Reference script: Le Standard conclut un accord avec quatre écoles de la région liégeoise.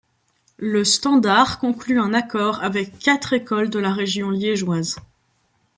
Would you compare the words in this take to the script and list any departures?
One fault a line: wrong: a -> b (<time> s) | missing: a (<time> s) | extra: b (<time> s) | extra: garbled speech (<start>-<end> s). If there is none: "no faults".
no faults